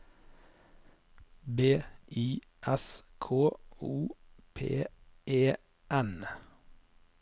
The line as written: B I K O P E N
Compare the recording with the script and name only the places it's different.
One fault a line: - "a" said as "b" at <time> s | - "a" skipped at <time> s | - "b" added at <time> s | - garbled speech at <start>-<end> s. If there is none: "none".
- "S" added at 2.6 s